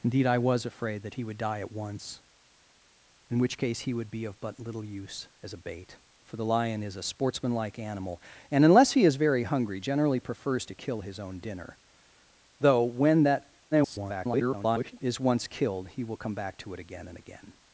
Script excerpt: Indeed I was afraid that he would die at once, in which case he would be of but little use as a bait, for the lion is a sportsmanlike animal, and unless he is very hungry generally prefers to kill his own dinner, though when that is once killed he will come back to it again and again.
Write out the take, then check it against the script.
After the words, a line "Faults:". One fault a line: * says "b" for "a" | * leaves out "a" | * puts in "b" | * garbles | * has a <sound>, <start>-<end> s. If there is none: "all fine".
Indeed I was afraid that he would die at once, in which case he would be of but little use as a bait, for the lion is a sportsmanlike animal, and unless he is very hungry generally prefers to kill his own dinner, though when that [garbled] is once killed he will come back to it again and again.
Faults:
* garbles